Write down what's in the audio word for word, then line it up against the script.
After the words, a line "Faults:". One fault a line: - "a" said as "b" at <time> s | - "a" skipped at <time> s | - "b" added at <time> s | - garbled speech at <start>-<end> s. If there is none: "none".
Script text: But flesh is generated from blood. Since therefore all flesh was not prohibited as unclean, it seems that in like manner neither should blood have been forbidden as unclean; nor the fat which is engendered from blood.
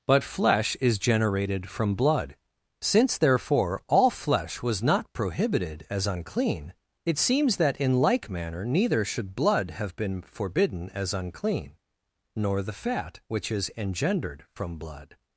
But flesh is generated from blood. Since therefore all flesh was not prohibited as unclean, it seems that in like manner neither should blood have been forbidden as unclean; nor the fat which is engendered from blood.
Faults:
none